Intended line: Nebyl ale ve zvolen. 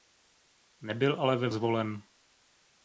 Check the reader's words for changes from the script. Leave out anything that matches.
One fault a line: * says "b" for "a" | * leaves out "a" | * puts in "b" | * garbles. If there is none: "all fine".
all fine